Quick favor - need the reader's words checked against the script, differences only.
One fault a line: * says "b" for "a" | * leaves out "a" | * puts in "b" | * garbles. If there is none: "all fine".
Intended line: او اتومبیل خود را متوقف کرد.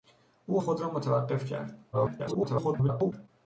* leaves out "اتومبیل"
* garbles